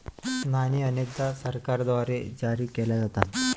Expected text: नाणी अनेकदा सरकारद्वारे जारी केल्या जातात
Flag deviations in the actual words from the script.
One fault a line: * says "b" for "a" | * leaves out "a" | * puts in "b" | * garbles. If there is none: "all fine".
all fine